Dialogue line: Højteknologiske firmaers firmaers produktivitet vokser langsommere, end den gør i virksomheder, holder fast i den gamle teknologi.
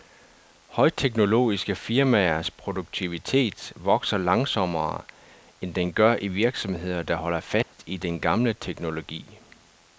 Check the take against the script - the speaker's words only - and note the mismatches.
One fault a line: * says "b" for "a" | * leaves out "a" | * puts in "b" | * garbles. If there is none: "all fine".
* leaves out "firmaers"
* puts in "der"